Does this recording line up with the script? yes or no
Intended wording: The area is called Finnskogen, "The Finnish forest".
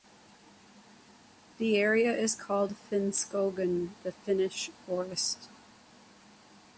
yes